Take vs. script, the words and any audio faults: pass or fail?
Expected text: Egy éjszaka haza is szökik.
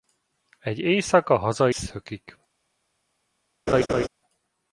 fail